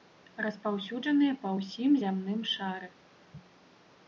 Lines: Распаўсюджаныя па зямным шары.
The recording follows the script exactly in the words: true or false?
false